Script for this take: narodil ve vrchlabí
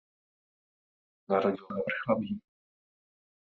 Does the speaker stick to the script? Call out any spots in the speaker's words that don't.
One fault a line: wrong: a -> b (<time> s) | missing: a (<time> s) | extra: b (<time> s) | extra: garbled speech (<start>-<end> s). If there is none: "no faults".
no faults